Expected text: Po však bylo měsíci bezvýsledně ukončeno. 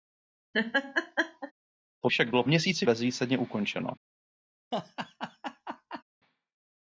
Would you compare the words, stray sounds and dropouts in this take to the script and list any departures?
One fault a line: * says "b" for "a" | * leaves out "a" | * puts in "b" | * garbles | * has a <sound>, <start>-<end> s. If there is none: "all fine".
* has a laugh, 0.5-1.5 s
* has a laugh, 4.7-6.0 s